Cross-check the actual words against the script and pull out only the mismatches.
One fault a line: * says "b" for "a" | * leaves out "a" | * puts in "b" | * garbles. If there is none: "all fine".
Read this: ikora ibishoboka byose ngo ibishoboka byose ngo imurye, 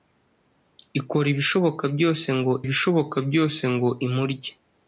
all fine